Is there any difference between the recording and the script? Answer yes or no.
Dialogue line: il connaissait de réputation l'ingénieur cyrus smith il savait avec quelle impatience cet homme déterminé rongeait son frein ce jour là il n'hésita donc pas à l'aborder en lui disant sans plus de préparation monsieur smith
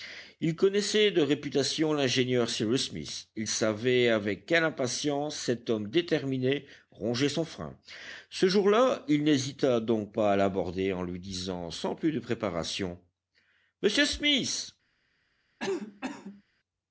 no